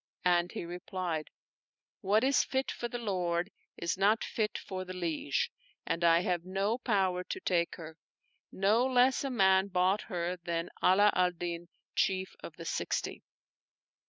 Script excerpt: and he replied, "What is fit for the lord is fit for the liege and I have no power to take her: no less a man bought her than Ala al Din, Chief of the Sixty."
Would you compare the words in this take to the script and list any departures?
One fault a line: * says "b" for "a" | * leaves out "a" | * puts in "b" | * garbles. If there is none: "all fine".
* puts in "not"